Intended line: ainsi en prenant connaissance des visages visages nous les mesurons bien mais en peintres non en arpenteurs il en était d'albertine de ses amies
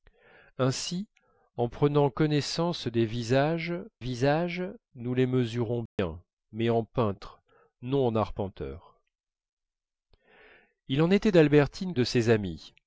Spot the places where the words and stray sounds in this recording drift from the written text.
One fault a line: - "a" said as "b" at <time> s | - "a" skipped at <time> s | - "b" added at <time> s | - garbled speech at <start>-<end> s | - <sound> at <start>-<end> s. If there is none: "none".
- dropout at 5.9-6.0 s